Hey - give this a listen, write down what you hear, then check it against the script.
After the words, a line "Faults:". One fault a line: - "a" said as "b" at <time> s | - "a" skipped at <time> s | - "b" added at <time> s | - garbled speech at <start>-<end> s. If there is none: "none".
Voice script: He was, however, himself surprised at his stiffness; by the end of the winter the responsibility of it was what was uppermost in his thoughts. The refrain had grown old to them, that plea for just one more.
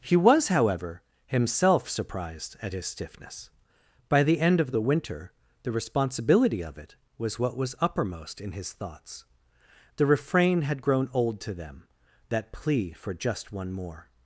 He was, however, himself surprised at his stiffness; by the end of the winter the responsibility of it was what was uppermost in his thoughts. The refrain had grown old to them, that plea for just one more.
Faults:
none